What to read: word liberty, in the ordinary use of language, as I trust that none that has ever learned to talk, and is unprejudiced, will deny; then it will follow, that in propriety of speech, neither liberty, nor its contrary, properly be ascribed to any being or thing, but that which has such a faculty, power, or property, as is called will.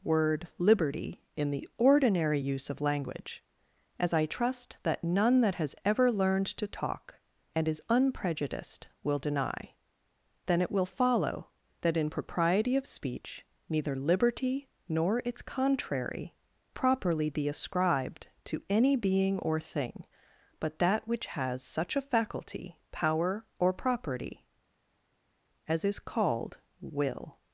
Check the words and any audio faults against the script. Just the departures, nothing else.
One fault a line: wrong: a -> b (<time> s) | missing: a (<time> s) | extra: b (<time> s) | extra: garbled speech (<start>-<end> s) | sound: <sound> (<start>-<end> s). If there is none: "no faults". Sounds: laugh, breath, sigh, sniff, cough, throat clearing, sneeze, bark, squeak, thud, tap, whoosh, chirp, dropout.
no faults